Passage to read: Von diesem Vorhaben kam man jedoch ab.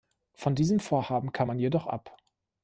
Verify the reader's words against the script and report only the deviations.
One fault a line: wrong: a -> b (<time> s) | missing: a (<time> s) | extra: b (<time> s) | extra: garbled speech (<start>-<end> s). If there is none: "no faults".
no faults